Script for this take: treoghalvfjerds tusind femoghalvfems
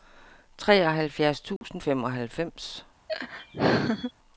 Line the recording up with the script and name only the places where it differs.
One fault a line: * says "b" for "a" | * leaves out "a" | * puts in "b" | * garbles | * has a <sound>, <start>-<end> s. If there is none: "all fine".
* has a dropout, 1.6-1.6 s
* has a laugh, 3.1-4.1 s